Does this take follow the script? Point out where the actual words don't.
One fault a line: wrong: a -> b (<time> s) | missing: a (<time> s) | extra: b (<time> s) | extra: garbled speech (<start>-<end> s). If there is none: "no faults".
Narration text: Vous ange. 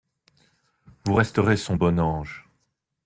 extra: resterez son bon (1.1 s)